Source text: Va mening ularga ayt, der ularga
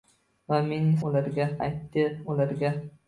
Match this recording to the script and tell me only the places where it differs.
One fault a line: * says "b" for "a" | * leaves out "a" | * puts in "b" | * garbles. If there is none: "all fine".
all fine